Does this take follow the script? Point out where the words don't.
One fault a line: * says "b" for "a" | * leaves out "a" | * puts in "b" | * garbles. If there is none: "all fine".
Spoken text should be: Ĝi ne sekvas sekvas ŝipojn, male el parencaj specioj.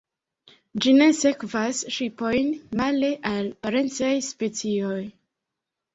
* leaves out "sekvas"
* says "al" for "el"